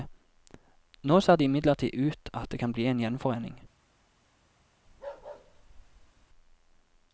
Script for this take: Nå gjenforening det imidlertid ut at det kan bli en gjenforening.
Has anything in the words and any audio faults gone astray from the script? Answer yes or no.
yes